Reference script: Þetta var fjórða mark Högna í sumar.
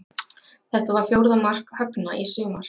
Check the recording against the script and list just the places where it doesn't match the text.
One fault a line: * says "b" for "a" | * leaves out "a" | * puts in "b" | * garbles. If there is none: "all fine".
all fine